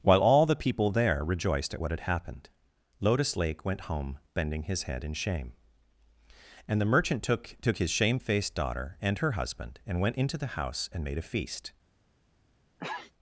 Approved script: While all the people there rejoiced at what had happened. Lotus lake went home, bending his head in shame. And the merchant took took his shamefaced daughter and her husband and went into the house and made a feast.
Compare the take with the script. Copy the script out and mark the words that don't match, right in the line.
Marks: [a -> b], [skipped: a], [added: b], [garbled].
While all the people there rejoiced at what had happened. Lotus lake went home, bending his head in shame. And the merchant took took his shamefaced daughter and her husband and went into the house and made a feast.